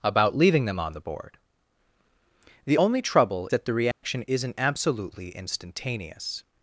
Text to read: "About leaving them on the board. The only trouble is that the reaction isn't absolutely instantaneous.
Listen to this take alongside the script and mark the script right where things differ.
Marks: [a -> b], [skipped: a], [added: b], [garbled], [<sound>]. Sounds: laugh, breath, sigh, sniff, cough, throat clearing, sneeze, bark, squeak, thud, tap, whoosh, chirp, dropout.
"About leaving them on the board. The only trouble [skipped: is] that the reaction [dropout] isn't absolutely instantaneous.